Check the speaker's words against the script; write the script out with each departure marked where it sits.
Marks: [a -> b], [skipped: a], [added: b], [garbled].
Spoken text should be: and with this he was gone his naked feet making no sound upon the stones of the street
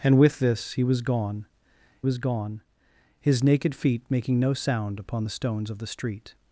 and with this he was gone [added: was gone] his naked feet making no sound upon the stones of the street